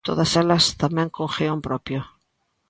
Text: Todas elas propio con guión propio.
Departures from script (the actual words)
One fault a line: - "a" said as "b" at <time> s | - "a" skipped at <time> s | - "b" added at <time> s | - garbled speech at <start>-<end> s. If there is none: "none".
- "propio" said as "tamén" at 0.8 s